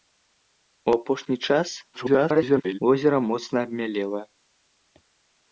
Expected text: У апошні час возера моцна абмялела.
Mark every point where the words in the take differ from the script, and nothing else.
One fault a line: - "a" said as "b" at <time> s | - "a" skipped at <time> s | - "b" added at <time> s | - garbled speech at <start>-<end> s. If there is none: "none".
- garbled speech at 1.9-2.8 s